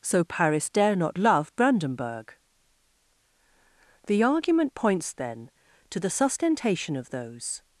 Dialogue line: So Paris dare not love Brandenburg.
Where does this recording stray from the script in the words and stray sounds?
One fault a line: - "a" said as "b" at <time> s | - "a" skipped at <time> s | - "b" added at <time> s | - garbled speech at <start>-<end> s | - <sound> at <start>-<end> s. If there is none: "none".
- "The argument points then to the sustentation of those" added at 4.1 s